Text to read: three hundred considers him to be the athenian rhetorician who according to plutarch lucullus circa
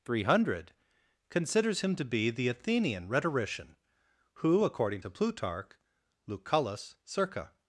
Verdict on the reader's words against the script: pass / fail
pass